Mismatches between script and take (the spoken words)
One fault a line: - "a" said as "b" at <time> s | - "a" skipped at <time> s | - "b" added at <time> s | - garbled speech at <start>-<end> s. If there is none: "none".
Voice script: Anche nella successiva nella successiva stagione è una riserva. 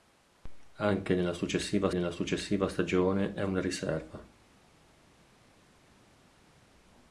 none